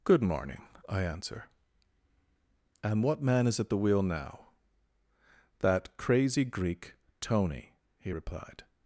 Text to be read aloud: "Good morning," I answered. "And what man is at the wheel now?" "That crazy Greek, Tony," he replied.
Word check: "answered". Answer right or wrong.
wrong